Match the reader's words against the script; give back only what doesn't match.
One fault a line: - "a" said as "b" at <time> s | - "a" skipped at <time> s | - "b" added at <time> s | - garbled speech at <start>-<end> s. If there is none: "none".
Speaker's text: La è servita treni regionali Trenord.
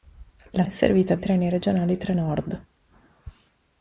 none